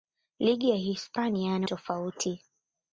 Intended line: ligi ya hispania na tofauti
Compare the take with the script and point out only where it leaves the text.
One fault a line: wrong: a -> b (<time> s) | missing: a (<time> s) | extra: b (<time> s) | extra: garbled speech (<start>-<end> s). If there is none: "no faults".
no faults